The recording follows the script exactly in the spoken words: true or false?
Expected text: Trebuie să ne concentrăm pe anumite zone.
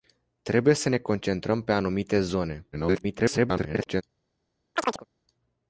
false